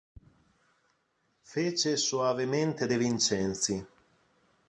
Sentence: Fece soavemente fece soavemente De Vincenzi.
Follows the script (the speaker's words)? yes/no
no